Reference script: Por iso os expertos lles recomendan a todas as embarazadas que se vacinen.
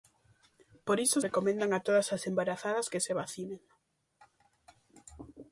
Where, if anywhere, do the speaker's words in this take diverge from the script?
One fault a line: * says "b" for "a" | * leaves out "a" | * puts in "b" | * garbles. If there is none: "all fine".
* leaves out "os expertos lles"